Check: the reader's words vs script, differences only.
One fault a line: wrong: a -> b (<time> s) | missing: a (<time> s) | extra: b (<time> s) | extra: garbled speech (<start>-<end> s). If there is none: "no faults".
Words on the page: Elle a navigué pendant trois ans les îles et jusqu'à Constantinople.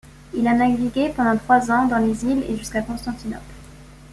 wrong: Elle -> Il (0.3 s)
extra: dans (1.9 s)